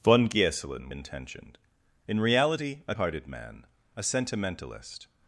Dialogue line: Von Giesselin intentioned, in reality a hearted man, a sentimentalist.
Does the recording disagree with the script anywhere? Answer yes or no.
no